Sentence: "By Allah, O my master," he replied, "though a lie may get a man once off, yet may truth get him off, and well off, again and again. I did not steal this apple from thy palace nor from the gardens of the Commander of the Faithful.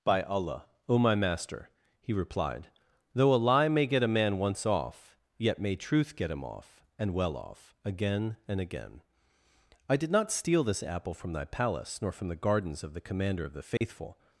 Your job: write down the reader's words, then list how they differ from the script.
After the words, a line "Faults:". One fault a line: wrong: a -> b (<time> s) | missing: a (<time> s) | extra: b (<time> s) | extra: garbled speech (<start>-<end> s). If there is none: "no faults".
"By Allah, O my master," he replied, "though a lie may get a man once off, yet may truth get him off, and well off, again and again. I did not steal this apple from thy palace nor from the gardens of the Commander of the Faithful.
Faults:
no faults